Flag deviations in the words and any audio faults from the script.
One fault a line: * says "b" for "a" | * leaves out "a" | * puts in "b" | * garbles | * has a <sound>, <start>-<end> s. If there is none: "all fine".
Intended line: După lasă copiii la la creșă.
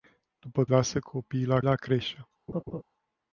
* has a laugh, 2.5-2.8 s